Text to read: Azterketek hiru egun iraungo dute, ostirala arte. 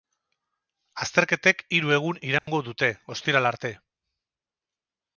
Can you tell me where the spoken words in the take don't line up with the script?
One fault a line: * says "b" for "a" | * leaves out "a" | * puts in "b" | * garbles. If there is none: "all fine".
all fine